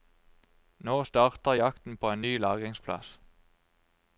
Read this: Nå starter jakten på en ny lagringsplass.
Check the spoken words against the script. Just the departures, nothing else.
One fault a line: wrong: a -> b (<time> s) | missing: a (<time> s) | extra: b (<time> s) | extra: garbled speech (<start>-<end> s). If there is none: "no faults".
no faults